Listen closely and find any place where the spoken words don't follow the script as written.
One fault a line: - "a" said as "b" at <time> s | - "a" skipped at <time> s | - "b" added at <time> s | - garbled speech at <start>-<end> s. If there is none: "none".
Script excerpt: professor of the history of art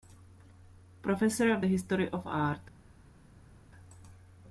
none